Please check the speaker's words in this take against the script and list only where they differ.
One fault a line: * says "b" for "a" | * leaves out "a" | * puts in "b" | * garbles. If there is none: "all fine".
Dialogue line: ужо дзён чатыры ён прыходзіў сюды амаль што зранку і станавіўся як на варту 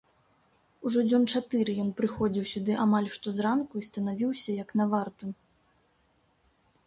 all fine